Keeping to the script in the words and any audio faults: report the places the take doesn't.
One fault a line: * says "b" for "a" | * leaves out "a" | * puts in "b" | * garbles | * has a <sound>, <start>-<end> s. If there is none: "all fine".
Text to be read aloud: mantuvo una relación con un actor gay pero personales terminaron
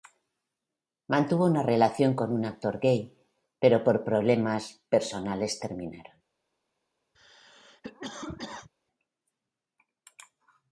* puts in "por problemas"
* has a cough, 7.1-8.7 s